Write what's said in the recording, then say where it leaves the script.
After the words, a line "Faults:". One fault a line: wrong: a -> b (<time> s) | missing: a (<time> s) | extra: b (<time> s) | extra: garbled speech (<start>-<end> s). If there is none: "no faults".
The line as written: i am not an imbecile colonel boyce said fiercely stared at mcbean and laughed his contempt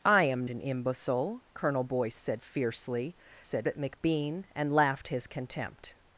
i am an imbecile colonel boyce said fiercely said at mcbean and laughed his contempt
Faults:
missing: not (0.5 s)
wrong: stared -> said (3.4 s)